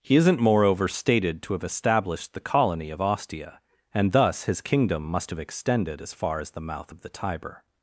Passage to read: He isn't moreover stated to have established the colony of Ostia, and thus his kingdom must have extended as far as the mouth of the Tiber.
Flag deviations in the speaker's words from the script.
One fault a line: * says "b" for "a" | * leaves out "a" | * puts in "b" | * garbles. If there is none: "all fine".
all fine